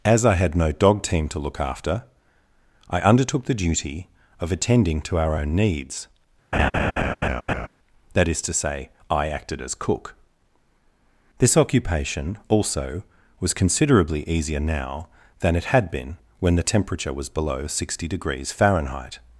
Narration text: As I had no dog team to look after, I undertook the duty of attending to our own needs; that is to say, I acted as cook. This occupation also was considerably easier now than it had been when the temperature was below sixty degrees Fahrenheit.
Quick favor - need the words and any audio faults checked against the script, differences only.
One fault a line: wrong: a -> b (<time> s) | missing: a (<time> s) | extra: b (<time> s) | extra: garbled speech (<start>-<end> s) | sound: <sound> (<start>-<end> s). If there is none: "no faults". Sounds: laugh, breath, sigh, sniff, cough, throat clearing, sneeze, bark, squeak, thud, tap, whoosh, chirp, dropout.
sound: laugh (6.5-7.7 s)